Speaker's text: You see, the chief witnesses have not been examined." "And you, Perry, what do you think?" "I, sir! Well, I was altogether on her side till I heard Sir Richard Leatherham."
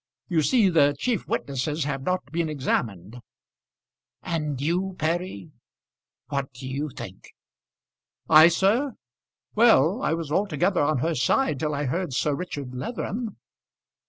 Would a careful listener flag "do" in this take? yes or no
no